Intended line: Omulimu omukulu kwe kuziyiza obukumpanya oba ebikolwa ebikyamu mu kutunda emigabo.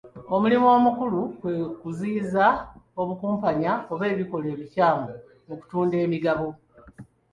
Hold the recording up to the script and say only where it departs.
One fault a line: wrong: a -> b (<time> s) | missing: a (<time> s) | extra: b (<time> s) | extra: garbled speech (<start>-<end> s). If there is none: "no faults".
no faults